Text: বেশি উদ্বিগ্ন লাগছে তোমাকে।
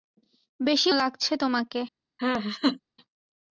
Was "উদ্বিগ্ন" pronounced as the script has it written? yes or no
no